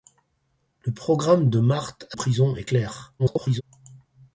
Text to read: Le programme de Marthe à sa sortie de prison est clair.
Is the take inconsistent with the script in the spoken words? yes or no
yes